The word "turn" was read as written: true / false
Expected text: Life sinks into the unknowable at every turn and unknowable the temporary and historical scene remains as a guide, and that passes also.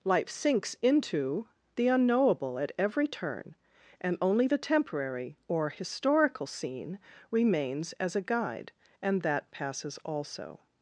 true